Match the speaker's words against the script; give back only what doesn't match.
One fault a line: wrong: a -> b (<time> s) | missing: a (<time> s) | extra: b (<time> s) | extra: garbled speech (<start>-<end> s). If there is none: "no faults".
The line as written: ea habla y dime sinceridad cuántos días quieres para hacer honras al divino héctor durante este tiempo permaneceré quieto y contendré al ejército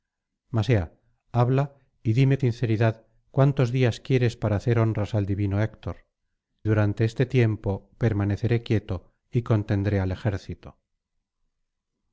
no faults